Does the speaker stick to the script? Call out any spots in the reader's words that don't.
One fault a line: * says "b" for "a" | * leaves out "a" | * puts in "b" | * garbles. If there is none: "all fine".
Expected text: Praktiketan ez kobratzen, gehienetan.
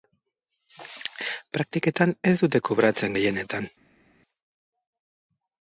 * puts in "dute"